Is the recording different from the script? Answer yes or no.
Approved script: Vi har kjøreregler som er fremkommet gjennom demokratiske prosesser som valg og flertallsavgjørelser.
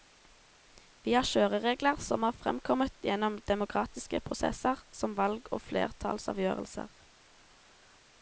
no